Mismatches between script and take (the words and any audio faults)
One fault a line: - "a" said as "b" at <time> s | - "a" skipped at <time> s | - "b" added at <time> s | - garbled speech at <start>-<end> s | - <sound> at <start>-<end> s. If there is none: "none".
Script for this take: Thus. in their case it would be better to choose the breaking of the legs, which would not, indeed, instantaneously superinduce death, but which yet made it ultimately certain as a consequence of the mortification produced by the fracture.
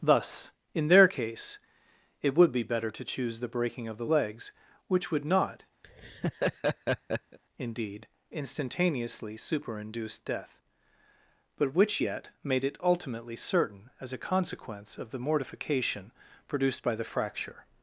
- laugh at 5.8-7.4 s